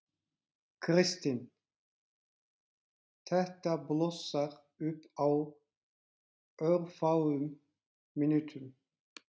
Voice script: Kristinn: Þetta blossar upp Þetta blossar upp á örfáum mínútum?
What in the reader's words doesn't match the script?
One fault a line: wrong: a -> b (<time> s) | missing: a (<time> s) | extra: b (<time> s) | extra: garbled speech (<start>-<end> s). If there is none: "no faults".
missing: Þetta blossar upp (5.1 s)